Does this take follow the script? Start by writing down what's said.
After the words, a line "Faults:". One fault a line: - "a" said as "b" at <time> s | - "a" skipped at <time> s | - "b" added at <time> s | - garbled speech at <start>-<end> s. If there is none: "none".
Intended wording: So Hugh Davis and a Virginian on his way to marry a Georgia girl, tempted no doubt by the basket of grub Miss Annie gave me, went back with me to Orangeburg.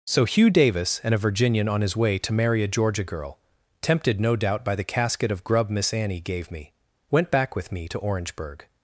So Hugh Davis and a Virginian on his way to marry a Georgia girl, tempted no doubt by the casket of grub Miss Annie gave me, went back with me to Orangeburg.
Faults:
- "basket" said as "casket" at 4.8 s